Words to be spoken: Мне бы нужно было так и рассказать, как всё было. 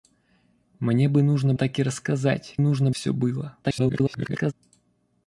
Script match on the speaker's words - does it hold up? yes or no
no